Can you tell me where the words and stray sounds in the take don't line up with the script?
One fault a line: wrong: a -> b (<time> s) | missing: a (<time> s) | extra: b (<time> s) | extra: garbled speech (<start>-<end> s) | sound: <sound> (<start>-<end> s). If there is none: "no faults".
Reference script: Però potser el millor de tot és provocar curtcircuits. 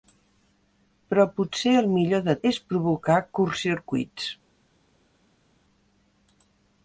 missing: tot (2.4 s)